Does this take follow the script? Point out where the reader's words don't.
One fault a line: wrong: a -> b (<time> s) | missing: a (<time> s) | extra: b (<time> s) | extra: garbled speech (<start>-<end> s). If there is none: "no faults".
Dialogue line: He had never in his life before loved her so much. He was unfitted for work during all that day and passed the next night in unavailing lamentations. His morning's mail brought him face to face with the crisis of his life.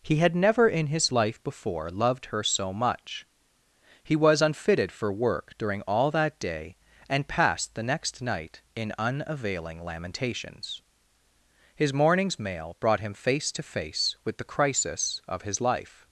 no faults